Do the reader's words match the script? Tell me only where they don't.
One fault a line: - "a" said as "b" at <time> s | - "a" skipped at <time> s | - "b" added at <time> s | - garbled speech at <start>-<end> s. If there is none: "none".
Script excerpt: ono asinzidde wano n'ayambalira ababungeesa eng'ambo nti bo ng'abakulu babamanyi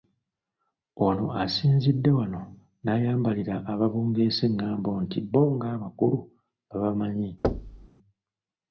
none